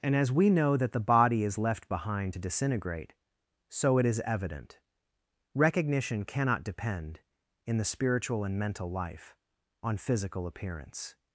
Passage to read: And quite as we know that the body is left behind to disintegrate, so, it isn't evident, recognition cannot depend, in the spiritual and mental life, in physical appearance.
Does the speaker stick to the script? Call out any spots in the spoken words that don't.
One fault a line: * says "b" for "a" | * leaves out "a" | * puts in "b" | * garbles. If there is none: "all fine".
* leaves out "quite"
* says "is" for "isn't"
* says "on" for "in"